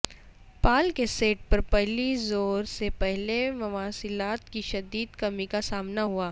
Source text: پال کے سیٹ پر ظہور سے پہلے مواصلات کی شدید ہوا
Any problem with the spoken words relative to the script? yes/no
yes